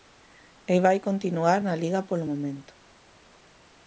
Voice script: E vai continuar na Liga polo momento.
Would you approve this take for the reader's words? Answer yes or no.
yes